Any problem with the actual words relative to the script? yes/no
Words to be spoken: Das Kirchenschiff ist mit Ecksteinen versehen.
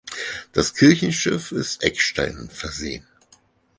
yes